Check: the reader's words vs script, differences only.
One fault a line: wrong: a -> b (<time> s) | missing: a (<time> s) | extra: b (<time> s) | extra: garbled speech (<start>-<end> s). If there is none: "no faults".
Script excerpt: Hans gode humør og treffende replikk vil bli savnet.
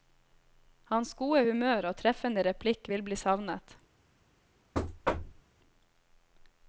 no faults